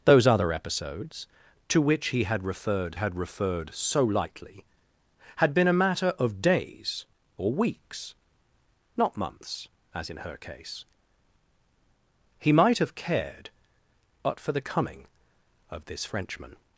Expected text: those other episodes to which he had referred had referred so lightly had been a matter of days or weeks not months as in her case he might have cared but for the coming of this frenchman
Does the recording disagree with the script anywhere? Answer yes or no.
no